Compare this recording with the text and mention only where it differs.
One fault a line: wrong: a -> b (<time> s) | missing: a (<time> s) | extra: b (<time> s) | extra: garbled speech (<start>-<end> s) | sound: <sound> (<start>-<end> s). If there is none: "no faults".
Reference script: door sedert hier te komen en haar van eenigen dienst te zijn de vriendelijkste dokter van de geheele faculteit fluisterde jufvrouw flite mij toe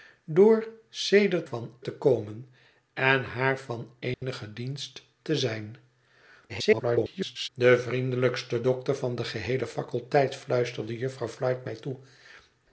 wrong: hier -> van (1.4 s)
sound: dropout (4.1-4.2 s)
extra: garbled speech (6.5-7.5 s)